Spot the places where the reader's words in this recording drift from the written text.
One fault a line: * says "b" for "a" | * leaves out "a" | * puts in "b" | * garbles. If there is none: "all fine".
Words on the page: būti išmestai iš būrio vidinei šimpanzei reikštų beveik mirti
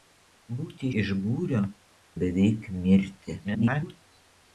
* leaves out "išmestai"
* leaves out "vidinei šimpanzei reikštų"
* garbles